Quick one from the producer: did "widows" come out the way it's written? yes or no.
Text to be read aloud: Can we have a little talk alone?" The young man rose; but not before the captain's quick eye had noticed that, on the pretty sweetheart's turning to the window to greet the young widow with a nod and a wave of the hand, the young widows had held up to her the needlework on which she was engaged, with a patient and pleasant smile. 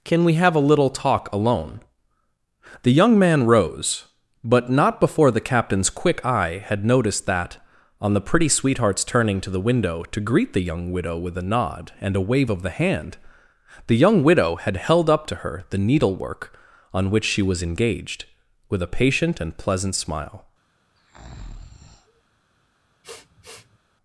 no